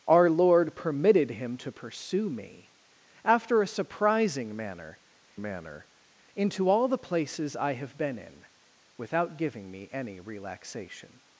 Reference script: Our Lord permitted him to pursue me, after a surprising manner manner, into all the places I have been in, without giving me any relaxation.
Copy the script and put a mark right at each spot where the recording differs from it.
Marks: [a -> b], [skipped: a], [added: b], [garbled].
Our Lord permitted him to pursue me, after a surprising manner manner, into all the places I have been in, without giving me any relaxation.